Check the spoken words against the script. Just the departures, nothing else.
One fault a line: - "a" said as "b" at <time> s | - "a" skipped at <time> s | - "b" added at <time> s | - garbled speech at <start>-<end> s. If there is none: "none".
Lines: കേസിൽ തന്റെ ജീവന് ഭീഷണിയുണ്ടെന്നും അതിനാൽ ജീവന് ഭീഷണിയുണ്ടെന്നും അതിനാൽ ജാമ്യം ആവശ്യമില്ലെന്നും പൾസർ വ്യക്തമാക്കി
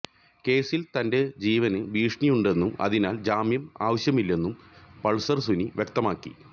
- "ജീവന് ഭീഷണിയുണ്ടെന്നും അതിനാൽ" skipped at 3.2 s
- "സുനി" added at 5.4 s